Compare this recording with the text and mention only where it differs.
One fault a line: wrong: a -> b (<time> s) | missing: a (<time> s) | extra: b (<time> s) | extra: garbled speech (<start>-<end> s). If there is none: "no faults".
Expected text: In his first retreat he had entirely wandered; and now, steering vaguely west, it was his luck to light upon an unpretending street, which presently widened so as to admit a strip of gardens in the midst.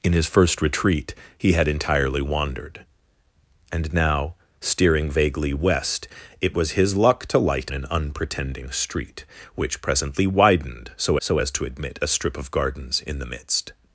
missing: upon (7.7 s)
extra: so (11.2 s)